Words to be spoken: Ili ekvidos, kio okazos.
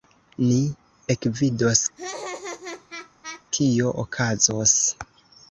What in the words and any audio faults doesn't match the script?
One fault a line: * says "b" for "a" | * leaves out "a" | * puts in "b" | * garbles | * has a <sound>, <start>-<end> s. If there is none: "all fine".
* says "Ni" for "Ili"
* has a laugh, 2.0-3.5 s